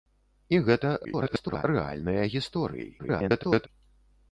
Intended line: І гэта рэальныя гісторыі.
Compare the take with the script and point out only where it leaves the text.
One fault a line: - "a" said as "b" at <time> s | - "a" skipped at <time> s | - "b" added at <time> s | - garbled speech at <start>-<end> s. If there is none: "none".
- garbled speech at 1.0-1.6 s
- garbled speech at 3.0-3.7 s